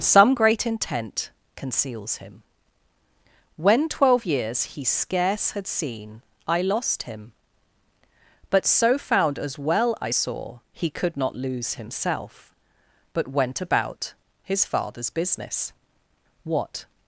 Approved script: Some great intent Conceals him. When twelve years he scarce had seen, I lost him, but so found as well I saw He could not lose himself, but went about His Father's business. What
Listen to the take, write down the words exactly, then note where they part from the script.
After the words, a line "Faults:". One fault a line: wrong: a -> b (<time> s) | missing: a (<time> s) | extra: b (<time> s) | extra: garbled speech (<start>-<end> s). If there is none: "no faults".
Some great intent Conceals him. When twelve years he scarce had seen, I lost him, but so found as well I saw He could not lose himself, but went about His Father's business. What
Faults:
no faults